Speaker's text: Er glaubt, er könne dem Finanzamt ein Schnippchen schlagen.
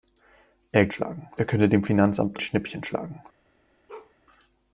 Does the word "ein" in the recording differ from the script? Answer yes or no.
yes